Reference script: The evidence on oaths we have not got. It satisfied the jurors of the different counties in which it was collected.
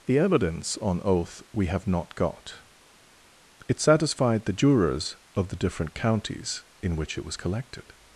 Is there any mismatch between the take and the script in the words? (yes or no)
yes